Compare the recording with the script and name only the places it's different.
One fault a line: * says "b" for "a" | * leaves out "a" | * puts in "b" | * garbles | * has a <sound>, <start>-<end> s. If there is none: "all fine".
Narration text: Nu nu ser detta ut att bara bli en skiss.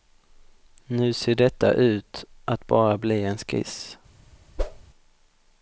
* leaves out "nu"
* has a whoosh, 4.6-4.8 s